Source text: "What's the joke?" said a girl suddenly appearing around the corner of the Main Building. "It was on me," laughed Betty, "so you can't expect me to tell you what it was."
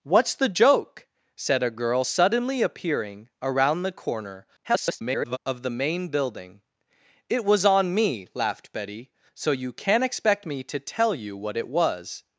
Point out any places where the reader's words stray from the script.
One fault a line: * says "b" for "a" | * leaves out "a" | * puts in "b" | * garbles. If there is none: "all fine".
* garbles